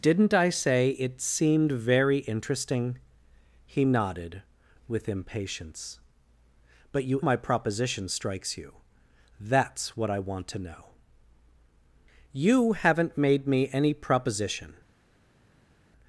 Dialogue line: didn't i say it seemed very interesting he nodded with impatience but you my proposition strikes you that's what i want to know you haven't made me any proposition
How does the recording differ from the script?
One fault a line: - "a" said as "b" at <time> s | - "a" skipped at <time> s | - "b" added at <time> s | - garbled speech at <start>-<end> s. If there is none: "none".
none